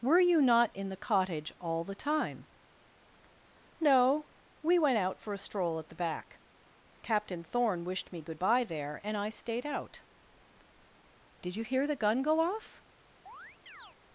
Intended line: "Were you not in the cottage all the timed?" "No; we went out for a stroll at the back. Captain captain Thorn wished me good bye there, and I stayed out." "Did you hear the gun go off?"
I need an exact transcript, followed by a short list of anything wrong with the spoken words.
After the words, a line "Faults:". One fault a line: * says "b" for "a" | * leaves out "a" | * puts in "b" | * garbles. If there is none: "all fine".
"Were you not in the cottage all the time?" "No; we went out for a stroll at the back. Captain Thorn wished me good bye there, and I stayed out." "Did you hear the gun go off?"
Faults:
* says "time" for "timed"
* leaves out "captain"